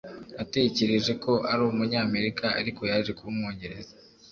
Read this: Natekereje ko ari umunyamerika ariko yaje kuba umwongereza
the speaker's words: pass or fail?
pass